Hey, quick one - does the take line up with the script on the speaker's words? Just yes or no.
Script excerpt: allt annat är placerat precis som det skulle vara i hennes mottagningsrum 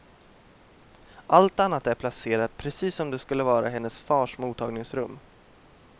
no